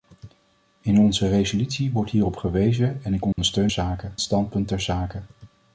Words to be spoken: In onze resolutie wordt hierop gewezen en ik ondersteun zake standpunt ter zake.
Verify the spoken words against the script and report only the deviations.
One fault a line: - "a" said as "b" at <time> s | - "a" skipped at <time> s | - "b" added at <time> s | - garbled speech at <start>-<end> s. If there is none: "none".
none